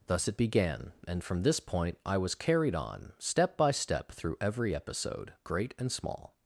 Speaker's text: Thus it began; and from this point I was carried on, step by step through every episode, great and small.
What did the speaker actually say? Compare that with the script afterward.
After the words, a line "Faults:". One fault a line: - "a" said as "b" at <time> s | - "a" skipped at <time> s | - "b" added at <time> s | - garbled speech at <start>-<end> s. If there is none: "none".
Thus it began; and from this point I was carried on, step by step through every episode, great and small.
Faults:
none